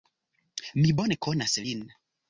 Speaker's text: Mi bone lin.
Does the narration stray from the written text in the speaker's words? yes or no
yes